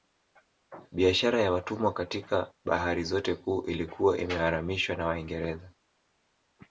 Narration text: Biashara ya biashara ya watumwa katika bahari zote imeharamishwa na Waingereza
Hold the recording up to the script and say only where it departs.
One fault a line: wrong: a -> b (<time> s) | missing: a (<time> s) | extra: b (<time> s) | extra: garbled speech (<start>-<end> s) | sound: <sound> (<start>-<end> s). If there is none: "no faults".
missing: biashara ya (1.5 s)
extra: kuu ilikuwa (3.3 s)